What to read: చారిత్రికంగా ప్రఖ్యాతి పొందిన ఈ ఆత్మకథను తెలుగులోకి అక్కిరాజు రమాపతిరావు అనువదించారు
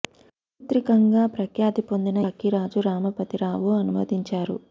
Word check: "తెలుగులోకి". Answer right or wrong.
wrong